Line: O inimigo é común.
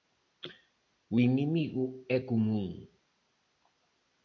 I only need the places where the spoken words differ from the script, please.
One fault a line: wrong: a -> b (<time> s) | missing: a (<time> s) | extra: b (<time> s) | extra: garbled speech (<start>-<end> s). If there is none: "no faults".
no faults